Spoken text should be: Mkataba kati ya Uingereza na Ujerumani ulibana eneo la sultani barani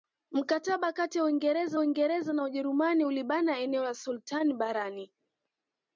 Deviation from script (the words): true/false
true